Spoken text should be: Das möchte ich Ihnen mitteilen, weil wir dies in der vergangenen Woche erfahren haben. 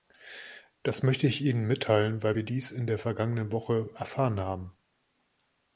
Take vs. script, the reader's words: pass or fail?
pass